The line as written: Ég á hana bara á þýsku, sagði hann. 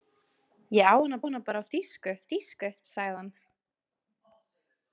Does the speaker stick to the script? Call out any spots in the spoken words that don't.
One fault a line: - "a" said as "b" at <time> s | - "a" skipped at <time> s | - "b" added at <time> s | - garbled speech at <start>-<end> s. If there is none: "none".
- "hana" added at 1.2 s
- "þýsku" added at 2.3 s